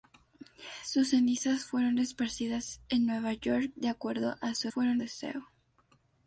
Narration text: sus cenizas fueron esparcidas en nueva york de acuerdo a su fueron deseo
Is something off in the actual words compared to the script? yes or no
no